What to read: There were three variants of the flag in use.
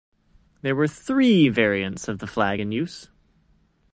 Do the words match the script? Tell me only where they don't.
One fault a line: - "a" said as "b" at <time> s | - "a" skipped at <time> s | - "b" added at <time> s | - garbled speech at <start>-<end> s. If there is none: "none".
none